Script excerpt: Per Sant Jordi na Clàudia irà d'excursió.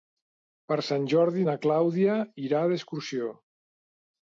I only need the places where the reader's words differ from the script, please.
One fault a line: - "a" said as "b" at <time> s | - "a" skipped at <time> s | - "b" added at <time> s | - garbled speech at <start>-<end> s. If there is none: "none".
none